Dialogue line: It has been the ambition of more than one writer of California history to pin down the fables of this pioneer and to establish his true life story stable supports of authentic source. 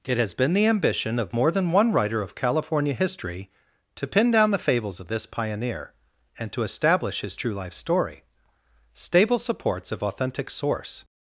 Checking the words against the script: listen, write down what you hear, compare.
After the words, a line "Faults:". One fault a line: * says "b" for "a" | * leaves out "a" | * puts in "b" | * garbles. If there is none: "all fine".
It has been the ambition of more than one writer of California history to pin down the fables of this pioneer and to establish his true life story stable supports of authentic source.
Faults:
all fine